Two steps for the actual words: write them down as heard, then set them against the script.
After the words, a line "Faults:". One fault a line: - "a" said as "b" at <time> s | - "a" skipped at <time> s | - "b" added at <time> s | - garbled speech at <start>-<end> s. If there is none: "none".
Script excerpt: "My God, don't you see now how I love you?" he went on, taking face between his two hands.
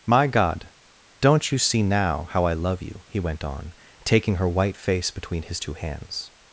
"My God, don't you see now how I love you?" he went on, taking her white face between his two hands.
Faults:
- "her white" added at 4.3 s